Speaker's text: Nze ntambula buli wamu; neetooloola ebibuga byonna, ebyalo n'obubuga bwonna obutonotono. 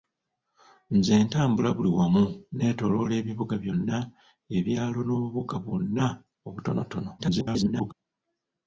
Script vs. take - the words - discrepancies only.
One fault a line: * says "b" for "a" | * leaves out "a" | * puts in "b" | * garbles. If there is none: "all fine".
* garbles